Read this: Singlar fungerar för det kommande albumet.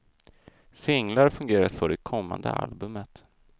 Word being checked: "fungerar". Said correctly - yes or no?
yes